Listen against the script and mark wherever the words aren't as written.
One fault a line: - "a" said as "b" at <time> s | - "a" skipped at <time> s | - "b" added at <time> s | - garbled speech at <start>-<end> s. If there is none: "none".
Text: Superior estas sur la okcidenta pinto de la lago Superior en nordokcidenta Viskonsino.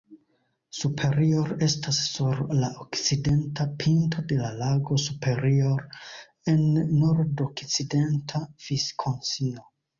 none